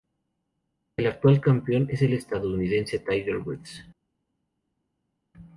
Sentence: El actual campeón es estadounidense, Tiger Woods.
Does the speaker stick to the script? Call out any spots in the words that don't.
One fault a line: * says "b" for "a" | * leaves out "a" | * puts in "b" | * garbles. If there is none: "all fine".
* puts in "el"